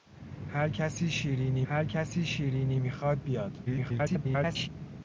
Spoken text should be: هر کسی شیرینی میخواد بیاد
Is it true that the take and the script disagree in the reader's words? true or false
true